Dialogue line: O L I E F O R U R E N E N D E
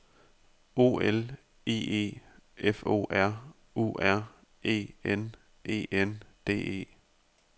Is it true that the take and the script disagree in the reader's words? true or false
false